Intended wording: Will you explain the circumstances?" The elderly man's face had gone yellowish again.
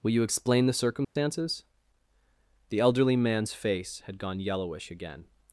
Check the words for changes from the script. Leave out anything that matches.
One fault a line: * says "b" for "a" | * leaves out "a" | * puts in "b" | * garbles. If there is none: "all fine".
all fine